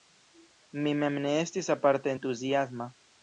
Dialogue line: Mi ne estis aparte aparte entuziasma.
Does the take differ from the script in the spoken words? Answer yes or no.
yes